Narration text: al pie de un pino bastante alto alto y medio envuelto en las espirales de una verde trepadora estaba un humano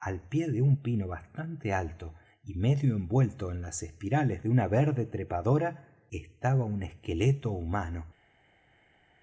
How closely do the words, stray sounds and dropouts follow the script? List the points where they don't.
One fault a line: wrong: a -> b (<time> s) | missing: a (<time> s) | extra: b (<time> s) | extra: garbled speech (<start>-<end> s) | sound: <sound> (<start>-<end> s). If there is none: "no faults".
missing: alto (2.1 s)
extra: esqueleto (6.8 s)